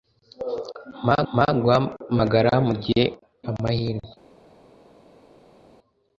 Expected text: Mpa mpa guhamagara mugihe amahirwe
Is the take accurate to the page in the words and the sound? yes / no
yes